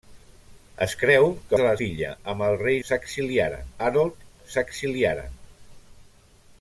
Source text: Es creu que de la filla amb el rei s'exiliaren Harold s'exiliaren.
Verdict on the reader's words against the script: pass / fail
pass